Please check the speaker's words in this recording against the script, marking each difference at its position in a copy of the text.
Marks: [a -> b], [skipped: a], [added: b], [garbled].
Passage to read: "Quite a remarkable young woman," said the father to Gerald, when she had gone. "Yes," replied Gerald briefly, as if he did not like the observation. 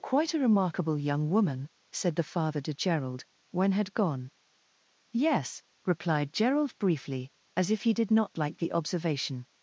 "Quite a remarkable young woman," said the father to Gerald, when [skipped: she] had gone. "Yes," replied Gerald briefly, as if he did not like the observation.